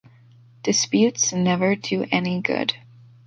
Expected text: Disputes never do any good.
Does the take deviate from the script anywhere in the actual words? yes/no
no